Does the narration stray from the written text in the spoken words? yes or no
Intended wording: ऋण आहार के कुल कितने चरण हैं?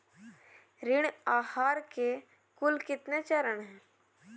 no